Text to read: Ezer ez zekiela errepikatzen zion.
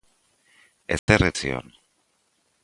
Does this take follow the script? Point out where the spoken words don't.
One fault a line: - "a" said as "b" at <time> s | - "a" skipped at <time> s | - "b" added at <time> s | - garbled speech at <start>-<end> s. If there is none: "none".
- "zekiela errepikatzen" skipped at 1.3 s